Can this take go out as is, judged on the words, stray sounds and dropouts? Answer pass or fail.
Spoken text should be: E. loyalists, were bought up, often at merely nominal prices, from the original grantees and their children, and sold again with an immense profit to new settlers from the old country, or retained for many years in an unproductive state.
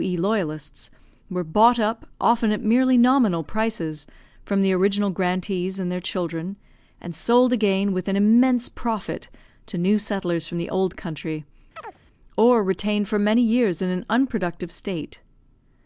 fail